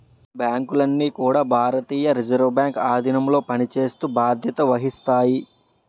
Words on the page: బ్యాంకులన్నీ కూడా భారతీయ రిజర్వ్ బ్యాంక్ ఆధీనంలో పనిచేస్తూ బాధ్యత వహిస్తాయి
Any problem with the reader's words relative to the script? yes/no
no